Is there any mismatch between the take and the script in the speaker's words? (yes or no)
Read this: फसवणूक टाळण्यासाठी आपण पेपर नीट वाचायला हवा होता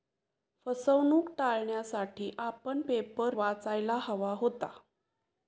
yes